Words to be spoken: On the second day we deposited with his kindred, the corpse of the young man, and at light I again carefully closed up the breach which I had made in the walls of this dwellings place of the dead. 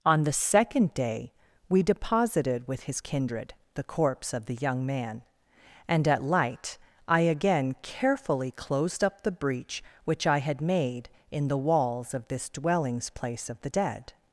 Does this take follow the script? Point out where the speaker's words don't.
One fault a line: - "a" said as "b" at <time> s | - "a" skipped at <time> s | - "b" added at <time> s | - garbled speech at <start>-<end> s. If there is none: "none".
none